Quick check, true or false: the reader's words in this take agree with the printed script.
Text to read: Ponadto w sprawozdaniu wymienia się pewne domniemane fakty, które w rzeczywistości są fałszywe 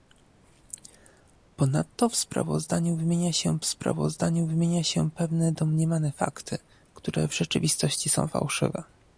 false